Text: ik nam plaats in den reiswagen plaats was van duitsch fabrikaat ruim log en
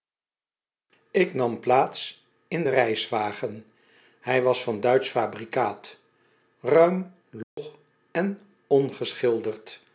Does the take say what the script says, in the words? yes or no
no